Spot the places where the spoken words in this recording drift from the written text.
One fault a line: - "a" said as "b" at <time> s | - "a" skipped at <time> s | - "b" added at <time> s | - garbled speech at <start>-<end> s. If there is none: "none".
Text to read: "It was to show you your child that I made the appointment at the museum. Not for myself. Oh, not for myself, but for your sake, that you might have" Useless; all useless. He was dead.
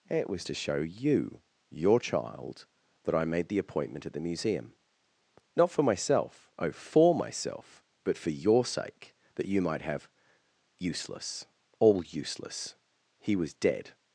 - "not" skipped at 6.7 s